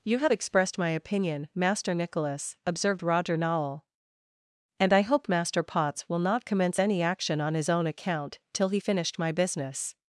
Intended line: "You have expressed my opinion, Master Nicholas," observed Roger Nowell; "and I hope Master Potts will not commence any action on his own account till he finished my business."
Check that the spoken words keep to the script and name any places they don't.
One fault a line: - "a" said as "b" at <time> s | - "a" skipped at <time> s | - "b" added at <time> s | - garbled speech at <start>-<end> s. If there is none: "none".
none